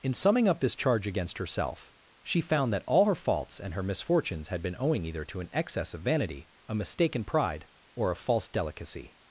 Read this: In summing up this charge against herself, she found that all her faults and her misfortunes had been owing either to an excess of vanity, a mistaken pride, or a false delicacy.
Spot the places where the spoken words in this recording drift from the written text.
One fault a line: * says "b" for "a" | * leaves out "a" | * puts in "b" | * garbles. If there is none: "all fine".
all fine